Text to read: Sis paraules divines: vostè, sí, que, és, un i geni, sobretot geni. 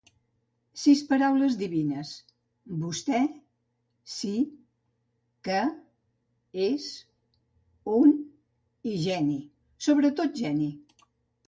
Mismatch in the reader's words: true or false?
false